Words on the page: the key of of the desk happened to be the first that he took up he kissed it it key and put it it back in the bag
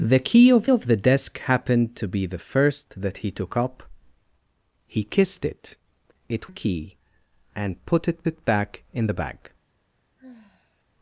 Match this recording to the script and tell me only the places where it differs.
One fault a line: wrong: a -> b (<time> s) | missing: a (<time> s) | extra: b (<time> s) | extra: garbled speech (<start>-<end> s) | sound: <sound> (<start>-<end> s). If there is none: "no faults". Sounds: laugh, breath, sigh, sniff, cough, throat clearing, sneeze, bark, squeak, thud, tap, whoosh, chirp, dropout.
sound: sigh (10.2-10.8 s)